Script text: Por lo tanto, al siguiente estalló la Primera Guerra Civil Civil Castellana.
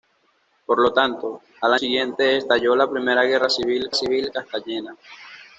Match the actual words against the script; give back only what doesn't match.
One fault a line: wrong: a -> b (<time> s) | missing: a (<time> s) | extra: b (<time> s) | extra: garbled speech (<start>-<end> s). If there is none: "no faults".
no faults